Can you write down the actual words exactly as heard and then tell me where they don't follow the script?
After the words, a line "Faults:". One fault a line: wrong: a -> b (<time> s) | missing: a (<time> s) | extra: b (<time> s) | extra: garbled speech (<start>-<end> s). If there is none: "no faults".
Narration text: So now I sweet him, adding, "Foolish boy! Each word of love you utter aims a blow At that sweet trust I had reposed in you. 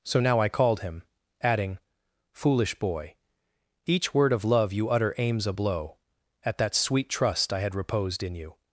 So now I called him, adding, "Foolish boy! Each word of love you utter aims a blow At that sweet trust I had reposed in you.
Faults:
wrong: sweet -> called (0.5 s)